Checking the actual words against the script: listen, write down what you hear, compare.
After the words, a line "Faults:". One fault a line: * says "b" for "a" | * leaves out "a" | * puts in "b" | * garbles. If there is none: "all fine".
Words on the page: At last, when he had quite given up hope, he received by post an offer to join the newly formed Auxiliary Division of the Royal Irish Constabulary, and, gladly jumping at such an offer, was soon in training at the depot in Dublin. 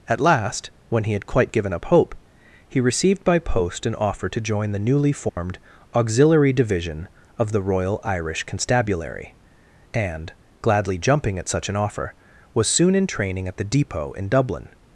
At last, when he had quite given up hope, he received by post an offer to join the newly formed Auxiliary Division of the Royal Irish Constabulary, and, gladly jumping at such an offer, was soon in training at the depot in Dublin.
Faults:
all fine